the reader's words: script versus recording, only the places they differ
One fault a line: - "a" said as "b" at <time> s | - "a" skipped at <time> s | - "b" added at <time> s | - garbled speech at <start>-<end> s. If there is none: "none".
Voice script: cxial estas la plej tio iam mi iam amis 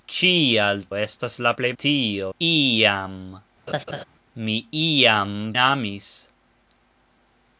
none